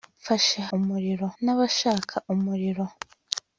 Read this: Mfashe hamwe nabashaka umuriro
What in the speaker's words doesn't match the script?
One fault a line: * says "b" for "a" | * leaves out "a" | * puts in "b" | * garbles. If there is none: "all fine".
* says "umuriro" for "hamwe"